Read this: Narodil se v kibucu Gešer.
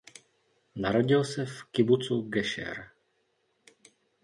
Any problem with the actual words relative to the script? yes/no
no